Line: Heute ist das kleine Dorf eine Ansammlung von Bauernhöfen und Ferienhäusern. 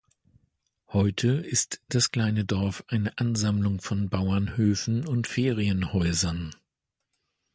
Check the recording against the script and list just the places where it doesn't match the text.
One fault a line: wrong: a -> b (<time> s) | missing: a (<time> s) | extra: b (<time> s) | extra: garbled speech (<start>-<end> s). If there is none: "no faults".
no faults